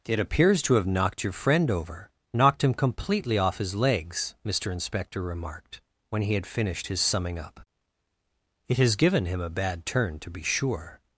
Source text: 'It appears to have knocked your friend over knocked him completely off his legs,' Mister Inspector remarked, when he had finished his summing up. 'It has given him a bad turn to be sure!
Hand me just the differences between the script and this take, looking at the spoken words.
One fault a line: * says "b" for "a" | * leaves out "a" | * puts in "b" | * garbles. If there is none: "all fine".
all fine